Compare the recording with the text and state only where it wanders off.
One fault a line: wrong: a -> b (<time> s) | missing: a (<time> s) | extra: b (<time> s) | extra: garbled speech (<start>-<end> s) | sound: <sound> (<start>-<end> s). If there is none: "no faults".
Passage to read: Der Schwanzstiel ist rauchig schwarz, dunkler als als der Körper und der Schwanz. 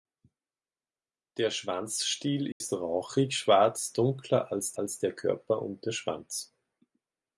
sound: dropout (2.5-2.6 s)